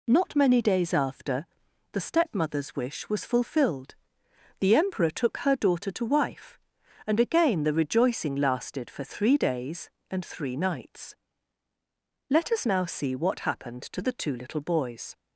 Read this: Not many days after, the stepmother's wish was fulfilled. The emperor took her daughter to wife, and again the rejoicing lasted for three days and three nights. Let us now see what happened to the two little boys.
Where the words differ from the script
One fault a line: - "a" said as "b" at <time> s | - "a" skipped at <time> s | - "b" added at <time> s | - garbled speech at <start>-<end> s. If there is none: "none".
none